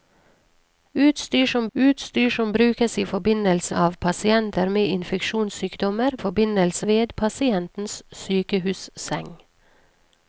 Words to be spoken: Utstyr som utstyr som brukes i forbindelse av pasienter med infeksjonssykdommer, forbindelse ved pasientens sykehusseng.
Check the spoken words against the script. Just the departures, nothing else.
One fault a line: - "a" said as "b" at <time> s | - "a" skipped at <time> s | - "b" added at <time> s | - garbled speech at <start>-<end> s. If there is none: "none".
none